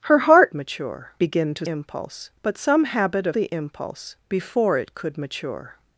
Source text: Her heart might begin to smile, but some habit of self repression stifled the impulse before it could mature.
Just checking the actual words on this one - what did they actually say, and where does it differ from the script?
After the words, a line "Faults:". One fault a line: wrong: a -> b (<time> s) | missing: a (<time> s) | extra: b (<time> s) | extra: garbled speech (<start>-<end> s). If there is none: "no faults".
Her heart mature begin to impulse, but some habit of the impulse before it could mature.
Faults:
wrong: might -> mature (0.5 s)
wrong: smile -> impulse (1.7 s)
missing: self repression stifled (3.4 s)